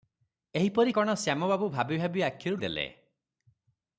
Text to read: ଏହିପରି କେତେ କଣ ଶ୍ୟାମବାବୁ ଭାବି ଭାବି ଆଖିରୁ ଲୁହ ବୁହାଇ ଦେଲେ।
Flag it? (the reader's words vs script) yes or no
yes